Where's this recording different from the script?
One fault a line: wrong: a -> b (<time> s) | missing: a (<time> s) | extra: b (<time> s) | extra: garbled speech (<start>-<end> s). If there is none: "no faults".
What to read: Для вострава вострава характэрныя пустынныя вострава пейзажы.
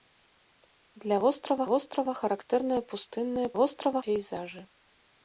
no faults